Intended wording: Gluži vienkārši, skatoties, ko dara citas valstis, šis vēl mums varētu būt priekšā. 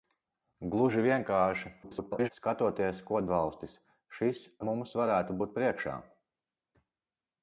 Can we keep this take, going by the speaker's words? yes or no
no